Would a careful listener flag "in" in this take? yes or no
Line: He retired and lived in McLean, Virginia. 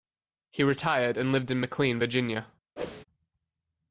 no